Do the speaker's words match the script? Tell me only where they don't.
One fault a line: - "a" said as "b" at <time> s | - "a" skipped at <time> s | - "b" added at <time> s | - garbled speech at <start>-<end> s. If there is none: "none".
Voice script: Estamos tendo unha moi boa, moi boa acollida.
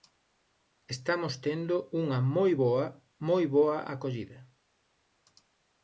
none